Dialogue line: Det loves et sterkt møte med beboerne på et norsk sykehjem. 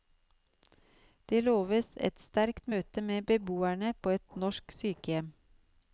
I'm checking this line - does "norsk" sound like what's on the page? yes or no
yes